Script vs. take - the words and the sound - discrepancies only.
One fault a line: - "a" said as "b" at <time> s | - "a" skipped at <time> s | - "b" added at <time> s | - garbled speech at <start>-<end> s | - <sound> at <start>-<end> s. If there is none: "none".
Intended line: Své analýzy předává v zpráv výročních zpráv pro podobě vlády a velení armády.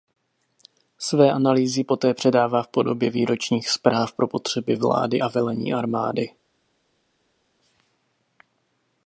- "poté" added at 1.8 s
- "zpráv" said as "podobě" at 2.7 s
- "podobě" said as "potřeby" at 4.3 s